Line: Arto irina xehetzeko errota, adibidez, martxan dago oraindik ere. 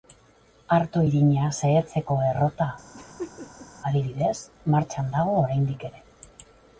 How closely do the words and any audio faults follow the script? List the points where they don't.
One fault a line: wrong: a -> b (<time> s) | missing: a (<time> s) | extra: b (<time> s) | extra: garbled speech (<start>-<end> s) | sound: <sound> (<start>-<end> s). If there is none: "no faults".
sound: laugh (2.9-3.7 s)